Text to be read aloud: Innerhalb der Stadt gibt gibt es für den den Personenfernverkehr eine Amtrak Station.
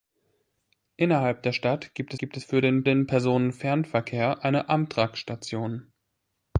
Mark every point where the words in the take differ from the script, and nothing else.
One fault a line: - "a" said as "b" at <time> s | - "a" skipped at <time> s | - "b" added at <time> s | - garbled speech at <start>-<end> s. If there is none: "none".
none